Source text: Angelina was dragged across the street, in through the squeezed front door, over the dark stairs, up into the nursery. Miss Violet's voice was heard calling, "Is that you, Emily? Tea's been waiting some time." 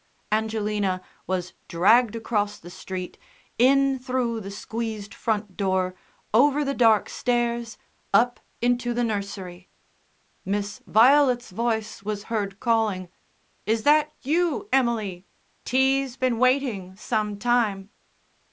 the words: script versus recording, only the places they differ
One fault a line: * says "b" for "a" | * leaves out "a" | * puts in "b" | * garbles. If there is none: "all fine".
all fine